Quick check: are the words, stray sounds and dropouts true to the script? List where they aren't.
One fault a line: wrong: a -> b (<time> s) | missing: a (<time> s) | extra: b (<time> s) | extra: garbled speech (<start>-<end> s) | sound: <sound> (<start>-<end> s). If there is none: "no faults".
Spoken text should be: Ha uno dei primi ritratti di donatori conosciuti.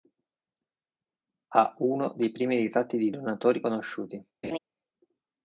sound: laugh (4.4-4.6 s)